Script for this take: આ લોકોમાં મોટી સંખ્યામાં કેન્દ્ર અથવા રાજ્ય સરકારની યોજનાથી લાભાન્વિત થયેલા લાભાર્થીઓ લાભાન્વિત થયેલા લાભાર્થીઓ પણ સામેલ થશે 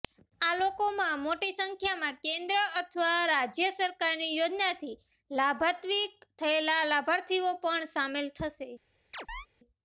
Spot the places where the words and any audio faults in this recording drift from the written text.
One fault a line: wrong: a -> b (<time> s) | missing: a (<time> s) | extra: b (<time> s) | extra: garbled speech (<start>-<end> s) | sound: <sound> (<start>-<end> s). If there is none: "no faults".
missing: લાભાન્વિત થયેલા લાભાર્થીઓ (7.5 s)
sound: chirp (9.1-9.5 s)